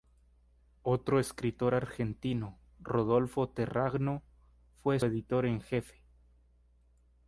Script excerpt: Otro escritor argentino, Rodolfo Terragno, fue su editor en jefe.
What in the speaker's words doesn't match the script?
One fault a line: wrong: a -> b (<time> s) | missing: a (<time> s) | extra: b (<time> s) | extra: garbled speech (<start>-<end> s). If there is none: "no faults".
missing: su (5.0 s)